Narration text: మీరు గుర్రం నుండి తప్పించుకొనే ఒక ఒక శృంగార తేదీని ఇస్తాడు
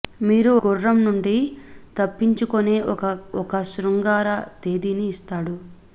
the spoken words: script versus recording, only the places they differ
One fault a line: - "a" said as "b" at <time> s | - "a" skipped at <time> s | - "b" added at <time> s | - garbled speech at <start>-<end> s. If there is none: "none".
none